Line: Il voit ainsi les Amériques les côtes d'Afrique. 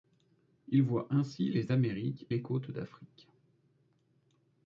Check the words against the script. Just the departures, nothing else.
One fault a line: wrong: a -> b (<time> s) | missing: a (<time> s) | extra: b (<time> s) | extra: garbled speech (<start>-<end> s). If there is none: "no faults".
no faults